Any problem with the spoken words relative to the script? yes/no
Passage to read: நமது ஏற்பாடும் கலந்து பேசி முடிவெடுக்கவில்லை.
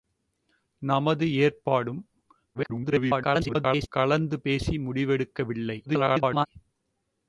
yes